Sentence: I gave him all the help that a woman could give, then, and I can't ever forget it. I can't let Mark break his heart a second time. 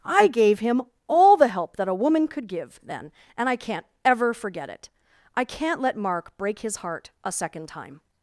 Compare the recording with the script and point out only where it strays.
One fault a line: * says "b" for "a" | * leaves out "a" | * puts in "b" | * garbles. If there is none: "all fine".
all fine